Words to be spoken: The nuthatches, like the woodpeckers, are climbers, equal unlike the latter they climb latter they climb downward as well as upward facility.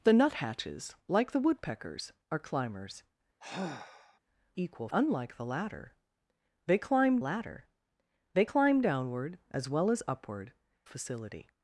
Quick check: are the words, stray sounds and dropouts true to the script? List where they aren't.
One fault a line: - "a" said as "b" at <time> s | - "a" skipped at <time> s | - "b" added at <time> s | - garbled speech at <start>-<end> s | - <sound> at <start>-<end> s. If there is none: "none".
- sigh at 3.4-4.2 s